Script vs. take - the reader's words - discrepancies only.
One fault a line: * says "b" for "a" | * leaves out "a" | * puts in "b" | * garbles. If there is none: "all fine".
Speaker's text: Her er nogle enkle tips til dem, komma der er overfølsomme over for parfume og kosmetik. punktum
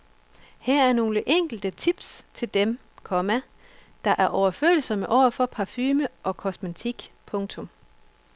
all fine